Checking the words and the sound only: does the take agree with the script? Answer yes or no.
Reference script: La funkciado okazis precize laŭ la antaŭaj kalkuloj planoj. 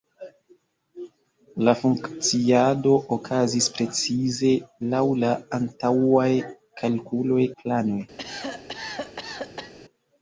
no